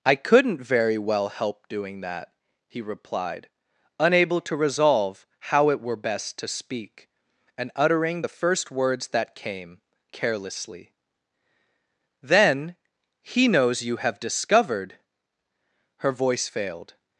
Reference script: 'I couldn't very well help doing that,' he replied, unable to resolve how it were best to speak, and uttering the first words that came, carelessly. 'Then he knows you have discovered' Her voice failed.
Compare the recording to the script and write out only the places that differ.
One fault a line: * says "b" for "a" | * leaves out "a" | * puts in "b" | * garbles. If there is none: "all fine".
all fine